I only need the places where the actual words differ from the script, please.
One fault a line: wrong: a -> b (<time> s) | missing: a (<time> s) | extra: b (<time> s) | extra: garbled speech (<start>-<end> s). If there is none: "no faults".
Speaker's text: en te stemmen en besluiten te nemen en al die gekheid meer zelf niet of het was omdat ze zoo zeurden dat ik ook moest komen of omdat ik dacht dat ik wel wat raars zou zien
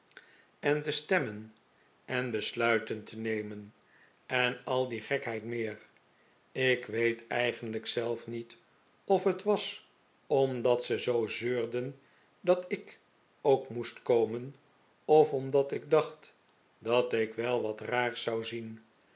extra: ik weet eigenlijk (6.5 s)